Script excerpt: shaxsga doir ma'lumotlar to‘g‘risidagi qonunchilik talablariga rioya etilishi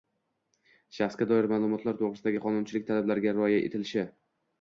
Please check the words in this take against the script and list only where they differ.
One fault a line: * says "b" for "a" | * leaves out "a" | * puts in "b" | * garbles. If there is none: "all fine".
all fine